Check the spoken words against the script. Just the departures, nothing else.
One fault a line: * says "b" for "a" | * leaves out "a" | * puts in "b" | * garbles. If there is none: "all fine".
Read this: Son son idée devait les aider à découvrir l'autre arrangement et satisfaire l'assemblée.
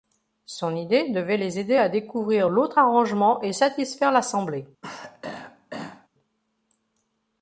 * leaves out "son"